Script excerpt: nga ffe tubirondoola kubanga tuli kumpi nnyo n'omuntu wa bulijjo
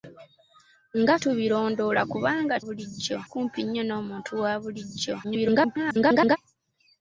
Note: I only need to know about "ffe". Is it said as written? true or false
false